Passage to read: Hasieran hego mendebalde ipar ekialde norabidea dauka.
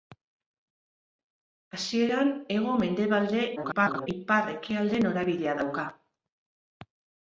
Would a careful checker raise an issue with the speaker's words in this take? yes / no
yes